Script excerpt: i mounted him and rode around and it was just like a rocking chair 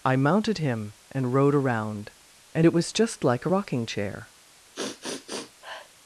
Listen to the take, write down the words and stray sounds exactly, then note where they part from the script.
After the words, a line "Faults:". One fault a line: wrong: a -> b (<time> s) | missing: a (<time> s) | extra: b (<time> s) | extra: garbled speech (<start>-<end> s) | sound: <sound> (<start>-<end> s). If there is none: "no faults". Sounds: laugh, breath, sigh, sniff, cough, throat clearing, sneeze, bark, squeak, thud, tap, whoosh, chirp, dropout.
i mounted him and rode around and it was just like a rocking chair
Faults:
sound: sniff (4.7-5.9 s)